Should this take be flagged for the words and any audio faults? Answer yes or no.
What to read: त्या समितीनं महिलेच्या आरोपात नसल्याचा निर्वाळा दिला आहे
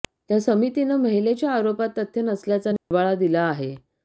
yes